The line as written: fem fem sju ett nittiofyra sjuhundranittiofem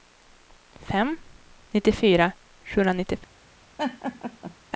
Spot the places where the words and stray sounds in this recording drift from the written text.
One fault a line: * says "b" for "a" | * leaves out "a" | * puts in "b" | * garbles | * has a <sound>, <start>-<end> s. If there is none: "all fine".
* leaves out "fem sju ett"
* has a laugh, 3.8-4.5 s